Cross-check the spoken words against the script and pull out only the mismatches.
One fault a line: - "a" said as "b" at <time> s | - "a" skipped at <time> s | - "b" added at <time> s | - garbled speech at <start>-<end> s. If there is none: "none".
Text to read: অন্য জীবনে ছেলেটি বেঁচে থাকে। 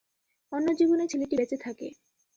none